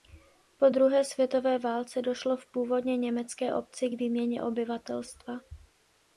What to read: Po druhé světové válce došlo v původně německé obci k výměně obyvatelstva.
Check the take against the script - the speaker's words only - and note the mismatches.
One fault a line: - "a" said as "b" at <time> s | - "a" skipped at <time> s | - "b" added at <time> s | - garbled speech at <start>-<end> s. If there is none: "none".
none